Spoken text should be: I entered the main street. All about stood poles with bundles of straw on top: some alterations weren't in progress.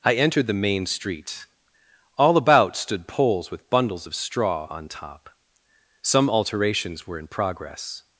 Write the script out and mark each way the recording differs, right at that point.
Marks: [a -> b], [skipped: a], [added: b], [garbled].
I entered the main street. All about stood poles with bundles of straw on top: some alterations [weren't -> were] in progress.